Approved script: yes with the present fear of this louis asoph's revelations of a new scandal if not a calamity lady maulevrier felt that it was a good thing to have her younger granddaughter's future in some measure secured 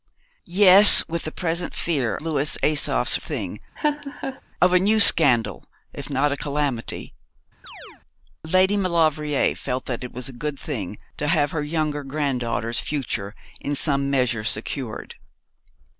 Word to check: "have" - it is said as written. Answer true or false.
true